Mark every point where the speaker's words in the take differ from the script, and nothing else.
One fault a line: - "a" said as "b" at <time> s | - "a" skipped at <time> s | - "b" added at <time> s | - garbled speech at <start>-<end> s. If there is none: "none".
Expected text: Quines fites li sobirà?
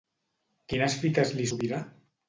none